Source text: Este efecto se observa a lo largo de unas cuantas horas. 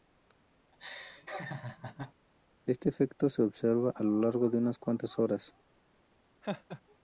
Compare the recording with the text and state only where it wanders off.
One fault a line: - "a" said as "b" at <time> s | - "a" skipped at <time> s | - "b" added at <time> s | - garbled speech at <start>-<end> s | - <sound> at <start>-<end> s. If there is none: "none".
- laugh at 0.7-2.1 s
- laugh at 6.4-6.8 s